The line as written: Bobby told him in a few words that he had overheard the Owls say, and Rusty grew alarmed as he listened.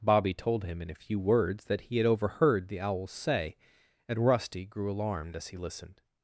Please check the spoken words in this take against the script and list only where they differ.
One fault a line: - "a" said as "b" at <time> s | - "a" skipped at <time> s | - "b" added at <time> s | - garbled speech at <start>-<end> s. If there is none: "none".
none